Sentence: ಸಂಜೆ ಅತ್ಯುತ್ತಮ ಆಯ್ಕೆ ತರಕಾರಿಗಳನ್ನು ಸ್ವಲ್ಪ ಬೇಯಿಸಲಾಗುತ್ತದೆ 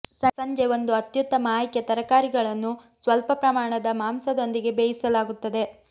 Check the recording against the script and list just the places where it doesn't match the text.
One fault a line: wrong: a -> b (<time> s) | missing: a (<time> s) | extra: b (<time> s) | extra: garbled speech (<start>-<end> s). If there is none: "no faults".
extra: ಒಂದು (0.7 s)
extra: ಪ್ರಮಾಣದ ಮಾಂಸದೊಂದಿಗೆ (3.4 s)